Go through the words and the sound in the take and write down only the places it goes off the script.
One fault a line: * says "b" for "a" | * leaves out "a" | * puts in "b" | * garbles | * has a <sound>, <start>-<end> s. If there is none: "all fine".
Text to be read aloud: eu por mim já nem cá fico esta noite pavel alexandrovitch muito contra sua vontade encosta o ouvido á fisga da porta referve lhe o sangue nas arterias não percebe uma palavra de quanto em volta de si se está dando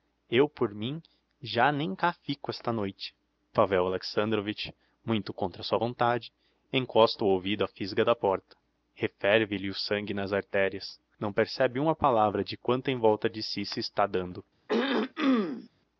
* has a throat clearing, 14.7-15.7 s